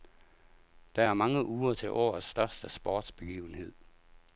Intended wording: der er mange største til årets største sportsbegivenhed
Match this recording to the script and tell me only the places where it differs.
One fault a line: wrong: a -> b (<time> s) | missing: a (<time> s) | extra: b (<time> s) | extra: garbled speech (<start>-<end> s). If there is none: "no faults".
wrong: største -> uger (1.5 s)